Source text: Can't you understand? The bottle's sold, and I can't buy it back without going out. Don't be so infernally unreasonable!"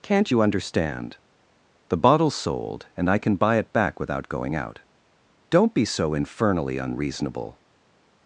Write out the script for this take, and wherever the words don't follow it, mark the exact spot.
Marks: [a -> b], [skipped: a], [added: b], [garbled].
Can't you understand? The bottle's sold, and I [can't -> can] buy it back without going out. Don't be so infernally unreasonable!"